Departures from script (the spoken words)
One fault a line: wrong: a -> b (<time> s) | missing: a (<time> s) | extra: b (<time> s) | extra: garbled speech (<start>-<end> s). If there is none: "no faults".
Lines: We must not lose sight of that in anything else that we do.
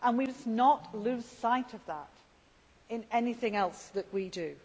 no faults